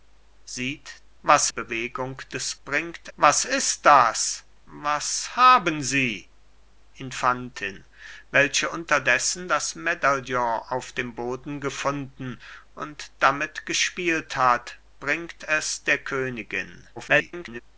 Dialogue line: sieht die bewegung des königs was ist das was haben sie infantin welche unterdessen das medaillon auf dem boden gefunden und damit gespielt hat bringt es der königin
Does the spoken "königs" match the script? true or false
false